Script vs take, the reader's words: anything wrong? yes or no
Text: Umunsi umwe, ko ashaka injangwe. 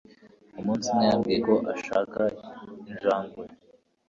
yes